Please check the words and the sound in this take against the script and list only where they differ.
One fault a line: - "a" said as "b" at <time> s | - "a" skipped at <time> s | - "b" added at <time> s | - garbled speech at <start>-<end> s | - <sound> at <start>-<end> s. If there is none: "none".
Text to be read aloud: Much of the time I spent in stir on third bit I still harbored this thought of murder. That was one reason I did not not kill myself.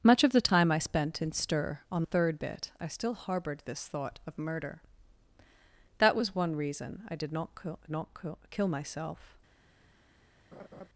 - laugh at 10.5-10.9 s